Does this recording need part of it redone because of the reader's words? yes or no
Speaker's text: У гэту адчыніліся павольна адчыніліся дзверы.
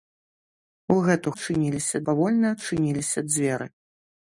no